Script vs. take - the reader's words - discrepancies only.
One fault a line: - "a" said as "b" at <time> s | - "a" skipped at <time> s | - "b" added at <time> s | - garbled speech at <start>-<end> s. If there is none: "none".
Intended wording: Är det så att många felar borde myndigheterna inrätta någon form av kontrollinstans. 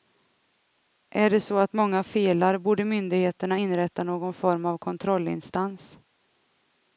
none